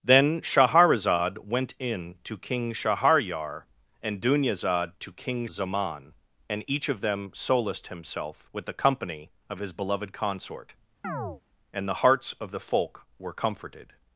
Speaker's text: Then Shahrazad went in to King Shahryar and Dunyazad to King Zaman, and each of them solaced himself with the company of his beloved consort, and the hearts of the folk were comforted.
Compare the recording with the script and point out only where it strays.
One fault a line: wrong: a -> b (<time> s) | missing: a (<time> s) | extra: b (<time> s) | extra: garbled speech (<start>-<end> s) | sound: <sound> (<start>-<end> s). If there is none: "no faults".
sound: chirp (11.0-11.4 s)